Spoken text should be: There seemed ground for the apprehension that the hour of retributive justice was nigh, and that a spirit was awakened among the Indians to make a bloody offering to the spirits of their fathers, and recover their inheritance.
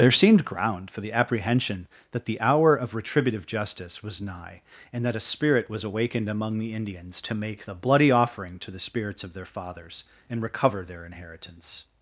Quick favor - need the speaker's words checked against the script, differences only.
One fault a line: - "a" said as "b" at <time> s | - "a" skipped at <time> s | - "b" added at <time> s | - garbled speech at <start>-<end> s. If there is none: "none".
- "a" said as "the" at 7.7 s